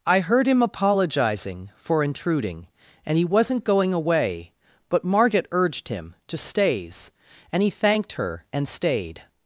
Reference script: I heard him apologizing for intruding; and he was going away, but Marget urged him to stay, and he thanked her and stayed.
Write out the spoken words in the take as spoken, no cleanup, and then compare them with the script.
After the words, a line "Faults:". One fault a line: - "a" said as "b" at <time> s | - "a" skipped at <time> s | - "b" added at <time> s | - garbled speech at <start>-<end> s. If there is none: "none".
I heard him apologizing for intruding; and he wasn't going away, but Marget urged him to stays, and he thanked her and stayed.
Faults:
- "was" said as "wasn't" at 3.2 s
- "stay" said as "stays" at 6.4 s